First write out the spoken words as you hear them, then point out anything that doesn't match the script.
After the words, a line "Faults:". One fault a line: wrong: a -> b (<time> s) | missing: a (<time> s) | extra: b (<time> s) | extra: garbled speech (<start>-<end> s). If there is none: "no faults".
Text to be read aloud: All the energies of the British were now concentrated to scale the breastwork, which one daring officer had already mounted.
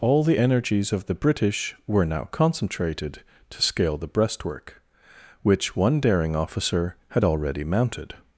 All the energies of the British were now concentrated to scale the breastwork, which one daring officer had already mounted.
Faults:
no faults